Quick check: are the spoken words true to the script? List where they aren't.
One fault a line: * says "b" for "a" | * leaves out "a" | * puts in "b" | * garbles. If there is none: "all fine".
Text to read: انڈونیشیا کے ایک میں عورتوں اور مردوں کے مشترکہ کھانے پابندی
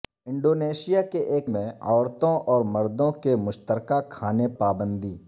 all fine